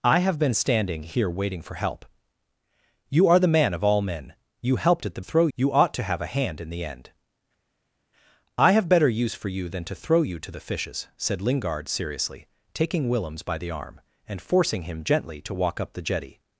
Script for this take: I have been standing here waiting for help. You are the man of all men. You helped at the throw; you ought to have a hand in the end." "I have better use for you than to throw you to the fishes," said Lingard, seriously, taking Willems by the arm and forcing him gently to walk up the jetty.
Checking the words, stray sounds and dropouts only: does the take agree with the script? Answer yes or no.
yes